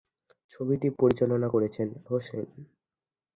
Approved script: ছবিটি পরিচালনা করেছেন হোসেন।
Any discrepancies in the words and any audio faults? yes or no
no